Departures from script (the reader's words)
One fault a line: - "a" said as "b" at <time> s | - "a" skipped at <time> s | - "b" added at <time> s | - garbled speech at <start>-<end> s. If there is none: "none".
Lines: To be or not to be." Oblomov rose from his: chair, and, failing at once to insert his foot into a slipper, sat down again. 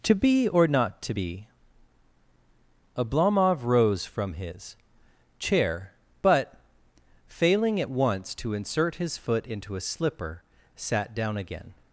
- "and" said as "but" at 6.2 s